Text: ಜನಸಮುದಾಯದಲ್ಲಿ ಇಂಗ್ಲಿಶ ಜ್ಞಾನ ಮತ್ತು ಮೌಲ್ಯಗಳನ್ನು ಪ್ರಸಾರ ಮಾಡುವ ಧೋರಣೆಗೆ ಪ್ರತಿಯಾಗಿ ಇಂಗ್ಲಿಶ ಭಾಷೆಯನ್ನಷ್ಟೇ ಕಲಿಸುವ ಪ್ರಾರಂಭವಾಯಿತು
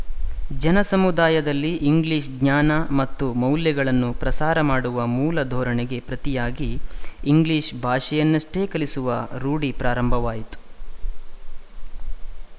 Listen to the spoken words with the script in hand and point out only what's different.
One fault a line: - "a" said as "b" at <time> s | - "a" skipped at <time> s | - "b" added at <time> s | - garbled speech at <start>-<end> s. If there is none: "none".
- "ಮೂಲ" added at 5.1 s
- "ರೂಢಿ" added at 9.4 s